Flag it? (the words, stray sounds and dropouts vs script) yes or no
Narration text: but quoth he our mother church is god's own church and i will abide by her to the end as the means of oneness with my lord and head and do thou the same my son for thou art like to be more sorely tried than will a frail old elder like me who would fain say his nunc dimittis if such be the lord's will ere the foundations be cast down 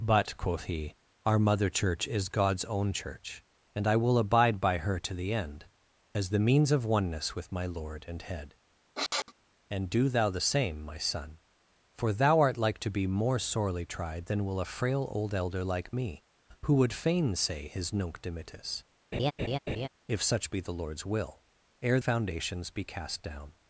yes